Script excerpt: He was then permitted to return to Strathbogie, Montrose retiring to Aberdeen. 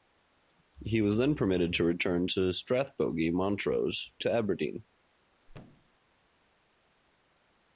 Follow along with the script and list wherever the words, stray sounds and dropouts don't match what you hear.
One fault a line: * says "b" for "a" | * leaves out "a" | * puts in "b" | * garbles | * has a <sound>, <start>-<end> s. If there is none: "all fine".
* leaves out "retiring"
* has a thud, 5.5-6.0 s